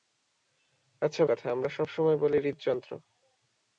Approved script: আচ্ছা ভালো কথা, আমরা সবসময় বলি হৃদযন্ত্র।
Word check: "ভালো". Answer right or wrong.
wrong